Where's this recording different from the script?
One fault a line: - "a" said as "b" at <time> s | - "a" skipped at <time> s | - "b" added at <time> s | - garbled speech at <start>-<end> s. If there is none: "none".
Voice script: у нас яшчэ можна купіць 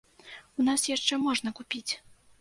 none